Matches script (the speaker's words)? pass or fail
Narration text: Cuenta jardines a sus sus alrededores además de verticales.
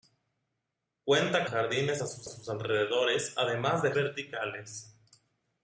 pass